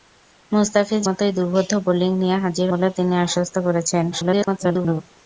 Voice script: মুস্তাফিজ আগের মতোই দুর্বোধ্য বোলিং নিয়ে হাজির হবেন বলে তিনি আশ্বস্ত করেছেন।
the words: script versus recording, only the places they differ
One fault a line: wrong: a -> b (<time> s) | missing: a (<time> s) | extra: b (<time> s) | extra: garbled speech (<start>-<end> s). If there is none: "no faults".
missing: আগের (1.0 s)
missing: হবেন (2.7 s)
extra: garbled speech (4.1-5.0 s)